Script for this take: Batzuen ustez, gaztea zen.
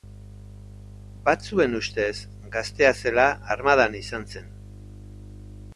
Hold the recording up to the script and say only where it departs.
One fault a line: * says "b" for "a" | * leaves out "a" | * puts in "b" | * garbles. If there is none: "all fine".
* puts in "zela armadan izan"